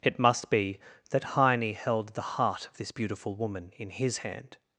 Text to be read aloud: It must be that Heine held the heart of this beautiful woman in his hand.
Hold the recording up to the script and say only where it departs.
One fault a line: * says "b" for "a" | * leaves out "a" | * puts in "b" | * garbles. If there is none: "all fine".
all fine